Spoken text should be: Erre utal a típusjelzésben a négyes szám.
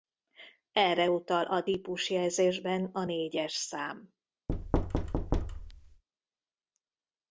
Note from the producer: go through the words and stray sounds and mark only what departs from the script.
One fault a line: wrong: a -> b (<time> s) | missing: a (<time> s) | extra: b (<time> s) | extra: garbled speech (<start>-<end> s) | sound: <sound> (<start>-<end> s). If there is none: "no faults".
sound: thud (4.5-6.0 s)